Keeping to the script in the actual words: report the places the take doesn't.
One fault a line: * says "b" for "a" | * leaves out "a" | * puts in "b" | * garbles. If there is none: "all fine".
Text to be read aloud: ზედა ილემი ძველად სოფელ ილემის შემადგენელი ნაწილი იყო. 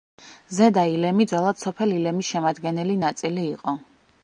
all fine